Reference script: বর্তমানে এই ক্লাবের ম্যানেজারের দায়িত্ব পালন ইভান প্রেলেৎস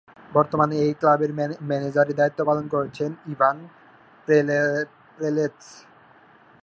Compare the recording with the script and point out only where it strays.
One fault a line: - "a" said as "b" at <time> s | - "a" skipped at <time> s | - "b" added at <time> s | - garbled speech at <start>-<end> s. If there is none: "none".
- "করছেন" added at 2.7 s